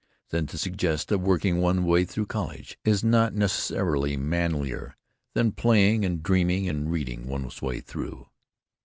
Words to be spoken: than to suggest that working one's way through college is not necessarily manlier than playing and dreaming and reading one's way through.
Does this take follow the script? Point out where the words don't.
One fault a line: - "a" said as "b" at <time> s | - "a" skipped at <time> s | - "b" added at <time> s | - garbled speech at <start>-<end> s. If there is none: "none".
none